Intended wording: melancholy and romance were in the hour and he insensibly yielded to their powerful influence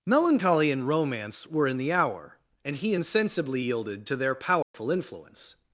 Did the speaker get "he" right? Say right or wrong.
right